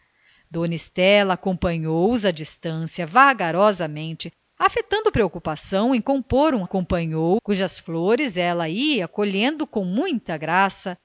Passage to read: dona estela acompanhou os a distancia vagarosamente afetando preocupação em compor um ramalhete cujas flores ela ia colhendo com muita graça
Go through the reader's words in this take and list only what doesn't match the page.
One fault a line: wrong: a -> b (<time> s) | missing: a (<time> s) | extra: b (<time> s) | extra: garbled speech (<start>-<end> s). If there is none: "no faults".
wrong: ramalhete -> acompanhou (6.6 s)